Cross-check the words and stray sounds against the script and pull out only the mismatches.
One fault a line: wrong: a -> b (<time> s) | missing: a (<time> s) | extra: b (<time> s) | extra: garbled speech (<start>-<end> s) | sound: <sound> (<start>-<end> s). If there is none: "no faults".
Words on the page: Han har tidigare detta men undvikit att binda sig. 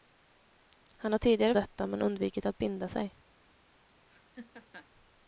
sound: laugh (4.1-4.9 s)